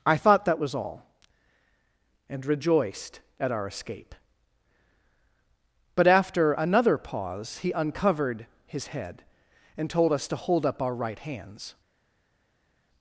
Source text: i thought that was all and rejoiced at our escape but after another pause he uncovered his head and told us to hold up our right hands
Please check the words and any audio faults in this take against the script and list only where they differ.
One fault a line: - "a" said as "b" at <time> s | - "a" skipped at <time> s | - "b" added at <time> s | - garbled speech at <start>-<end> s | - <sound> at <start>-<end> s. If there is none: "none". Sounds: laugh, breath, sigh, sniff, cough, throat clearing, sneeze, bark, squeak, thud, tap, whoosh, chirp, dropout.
none